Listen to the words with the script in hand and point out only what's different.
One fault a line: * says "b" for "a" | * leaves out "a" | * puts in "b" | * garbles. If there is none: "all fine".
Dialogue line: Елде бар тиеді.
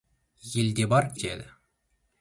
all fine